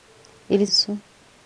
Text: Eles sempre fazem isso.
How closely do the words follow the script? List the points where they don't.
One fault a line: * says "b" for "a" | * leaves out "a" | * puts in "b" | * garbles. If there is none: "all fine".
* leaves out "sempre fazem"